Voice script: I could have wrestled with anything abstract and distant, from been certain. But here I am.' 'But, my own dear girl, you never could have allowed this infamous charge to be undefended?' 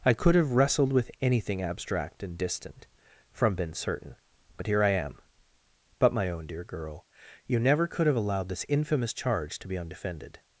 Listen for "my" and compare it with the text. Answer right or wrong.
right